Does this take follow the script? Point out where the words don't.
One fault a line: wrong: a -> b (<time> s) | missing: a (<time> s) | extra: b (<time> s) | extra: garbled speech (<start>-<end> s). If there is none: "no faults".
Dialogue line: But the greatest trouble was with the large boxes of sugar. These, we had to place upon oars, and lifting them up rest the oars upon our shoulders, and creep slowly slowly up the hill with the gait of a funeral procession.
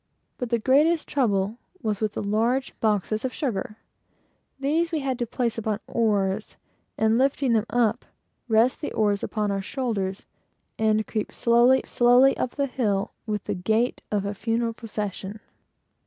no faults